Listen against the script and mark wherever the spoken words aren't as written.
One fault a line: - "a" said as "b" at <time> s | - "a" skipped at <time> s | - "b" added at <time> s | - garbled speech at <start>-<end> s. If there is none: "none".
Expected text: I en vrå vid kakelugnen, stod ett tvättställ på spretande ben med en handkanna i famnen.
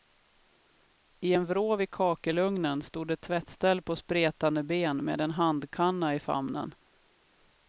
none